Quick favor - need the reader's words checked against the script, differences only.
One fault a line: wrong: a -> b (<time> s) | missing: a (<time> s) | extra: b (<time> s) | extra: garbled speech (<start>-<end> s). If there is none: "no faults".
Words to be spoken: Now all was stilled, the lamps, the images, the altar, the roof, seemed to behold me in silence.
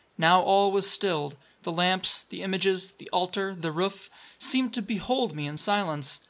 no faults